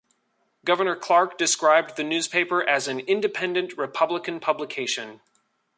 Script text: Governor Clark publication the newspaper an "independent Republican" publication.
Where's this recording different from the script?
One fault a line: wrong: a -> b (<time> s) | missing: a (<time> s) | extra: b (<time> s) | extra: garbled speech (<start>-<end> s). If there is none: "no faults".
wrong: publication -> described (1.4 s)
extra: as (2.7 s)